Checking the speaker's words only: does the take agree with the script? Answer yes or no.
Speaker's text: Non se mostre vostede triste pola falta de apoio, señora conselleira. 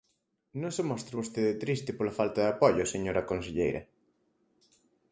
yes